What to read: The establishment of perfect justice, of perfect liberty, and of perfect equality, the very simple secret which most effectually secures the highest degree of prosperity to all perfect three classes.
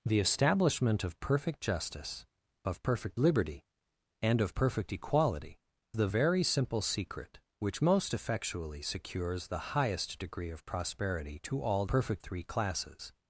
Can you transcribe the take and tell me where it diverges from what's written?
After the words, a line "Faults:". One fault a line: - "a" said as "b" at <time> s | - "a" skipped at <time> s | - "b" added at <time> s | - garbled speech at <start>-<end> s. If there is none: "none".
The establishment of perfect justice, of perfect liberty, and of perfect equality, the very simple secret which most effectually secures the highest degree of prosperity to all perfect three classes.
Faults:
none